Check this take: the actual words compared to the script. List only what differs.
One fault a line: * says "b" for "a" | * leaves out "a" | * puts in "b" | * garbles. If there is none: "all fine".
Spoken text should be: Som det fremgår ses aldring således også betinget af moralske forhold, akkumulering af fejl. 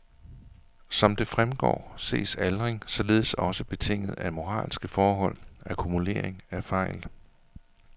all fine